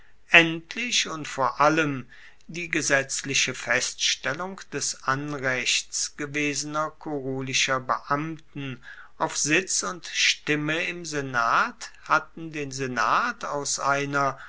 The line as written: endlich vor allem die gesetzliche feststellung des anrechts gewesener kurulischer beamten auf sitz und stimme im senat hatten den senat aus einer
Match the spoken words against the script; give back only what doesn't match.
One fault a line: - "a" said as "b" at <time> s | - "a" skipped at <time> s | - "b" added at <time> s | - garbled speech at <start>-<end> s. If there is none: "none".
- "und" added at 1.1 s